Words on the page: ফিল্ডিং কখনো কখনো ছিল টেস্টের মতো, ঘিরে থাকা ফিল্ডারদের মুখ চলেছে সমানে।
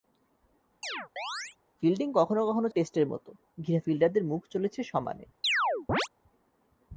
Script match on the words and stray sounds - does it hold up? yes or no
no